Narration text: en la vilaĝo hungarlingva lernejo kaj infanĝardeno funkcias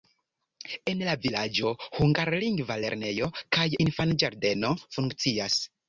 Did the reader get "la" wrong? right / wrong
right